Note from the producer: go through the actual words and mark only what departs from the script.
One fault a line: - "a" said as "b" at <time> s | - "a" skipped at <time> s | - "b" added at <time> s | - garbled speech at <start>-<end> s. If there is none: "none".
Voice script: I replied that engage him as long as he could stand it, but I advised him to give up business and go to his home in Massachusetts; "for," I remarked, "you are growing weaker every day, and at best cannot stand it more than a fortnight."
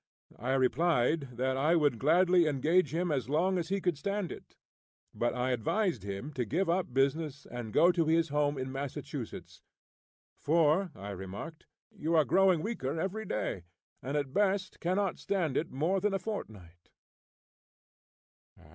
- "I would gladly" added at 1.6 s